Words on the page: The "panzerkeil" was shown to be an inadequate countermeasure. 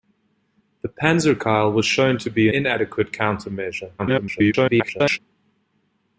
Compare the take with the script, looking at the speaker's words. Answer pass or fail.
fail